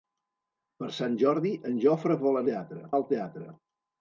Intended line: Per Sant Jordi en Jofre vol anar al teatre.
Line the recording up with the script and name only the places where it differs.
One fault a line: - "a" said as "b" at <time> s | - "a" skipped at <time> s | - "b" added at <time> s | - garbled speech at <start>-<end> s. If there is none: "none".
- "anar" said as "teatre" at 2.5 s